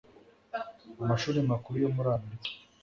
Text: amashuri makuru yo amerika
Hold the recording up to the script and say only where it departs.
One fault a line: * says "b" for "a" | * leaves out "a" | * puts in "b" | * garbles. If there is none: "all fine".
* puts in "muri"